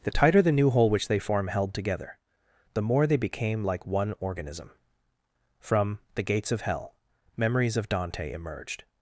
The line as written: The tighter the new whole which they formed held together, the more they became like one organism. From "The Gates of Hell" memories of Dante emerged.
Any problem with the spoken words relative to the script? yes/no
yes